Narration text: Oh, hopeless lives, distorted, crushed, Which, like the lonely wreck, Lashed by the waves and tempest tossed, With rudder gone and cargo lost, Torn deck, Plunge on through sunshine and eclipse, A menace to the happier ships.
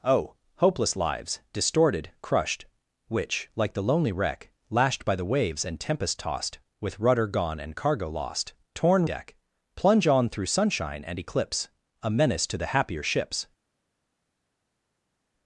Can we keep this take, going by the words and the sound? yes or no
yes